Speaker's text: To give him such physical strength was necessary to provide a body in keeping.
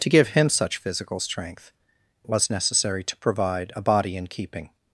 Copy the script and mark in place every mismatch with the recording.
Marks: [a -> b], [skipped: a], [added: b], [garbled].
To give him such physical strength was necessary to provide a body in keeping.